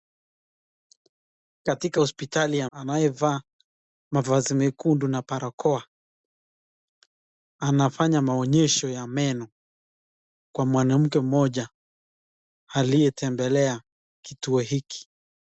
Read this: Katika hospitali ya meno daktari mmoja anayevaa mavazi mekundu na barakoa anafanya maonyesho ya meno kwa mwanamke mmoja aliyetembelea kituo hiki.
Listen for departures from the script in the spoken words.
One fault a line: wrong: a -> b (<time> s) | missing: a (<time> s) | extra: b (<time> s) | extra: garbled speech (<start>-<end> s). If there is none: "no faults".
missing: meno daktari mmoja (2.7 s)